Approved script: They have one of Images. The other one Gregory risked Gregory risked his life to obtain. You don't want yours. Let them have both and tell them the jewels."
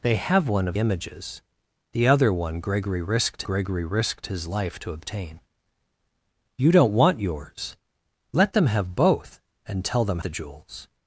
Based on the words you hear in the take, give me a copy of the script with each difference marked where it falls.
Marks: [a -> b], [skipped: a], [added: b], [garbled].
They have one of Images. The other one Gregory risked Gregory risked his life to obtain. You don't want yours. Let them have both and tell them the jewels."